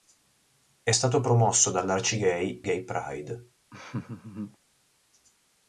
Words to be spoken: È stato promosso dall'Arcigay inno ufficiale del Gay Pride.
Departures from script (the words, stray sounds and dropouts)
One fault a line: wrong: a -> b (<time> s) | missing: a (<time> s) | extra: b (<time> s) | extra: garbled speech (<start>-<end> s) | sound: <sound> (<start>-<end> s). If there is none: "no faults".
missing: inno ufficiale del (2.6 s)
sound: laugh (3.7-4.6 s)